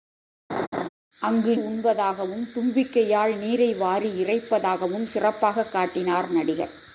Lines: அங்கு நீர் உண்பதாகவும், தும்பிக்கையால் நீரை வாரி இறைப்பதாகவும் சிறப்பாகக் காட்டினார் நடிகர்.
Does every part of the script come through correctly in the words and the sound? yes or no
no